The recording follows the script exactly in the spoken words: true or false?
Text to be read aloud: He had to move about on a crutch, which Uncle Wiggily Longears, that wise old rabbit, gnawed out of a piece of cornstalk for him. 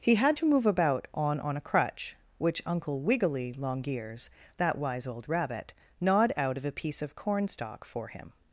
false